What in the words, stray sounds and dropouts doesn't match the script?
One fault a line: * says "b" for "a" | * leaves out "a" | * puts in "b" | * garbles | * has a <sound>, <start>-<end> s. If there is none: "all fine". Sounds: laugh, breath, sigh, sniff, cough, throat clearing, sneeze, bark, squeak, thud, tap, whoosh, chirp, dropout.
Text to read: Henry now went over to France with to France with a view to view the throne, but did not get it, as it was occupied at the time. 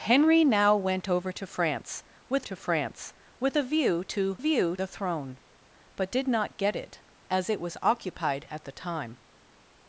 all fine